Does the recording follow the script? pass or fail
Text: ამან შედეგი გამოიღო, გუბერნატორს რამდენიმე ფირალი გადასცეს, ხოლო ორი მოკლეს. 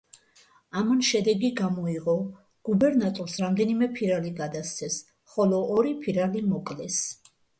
fail